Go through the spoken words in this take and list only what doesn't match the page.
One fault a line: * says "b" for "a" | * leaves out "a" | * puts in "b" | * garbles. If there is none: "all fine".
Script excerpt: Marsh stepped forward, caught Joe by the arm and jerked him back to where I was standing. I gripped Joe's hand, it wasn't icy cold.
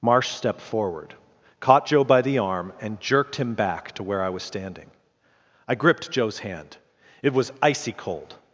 * says "was" for "wasn't"